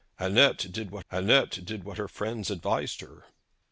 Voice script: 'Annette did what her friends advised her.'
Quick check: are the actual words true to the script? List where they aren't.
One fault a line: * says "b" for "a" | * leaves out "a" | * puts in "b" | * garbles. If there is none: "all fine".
* puts in "annette did what"